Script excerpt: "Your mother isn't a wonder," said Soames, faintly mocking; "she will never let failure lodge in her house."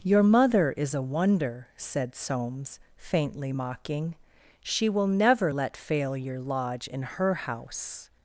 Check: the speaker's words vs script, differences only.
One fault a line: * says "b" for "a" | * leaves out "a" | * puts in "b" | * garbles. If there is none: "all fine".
* says "is" for "isn't"